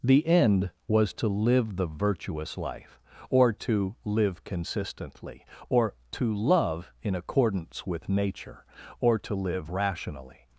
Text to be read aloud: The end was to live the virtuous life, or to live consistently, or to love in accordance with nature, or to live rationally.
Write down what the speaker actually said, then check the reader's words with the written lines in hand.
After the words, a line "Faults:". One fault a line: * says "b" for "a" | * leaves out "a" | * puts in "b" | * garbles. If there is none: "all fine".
The end was to live the virtuous life, or to live consistently, or to love in accordance with nature, or to live rationally.
Faults:
all fine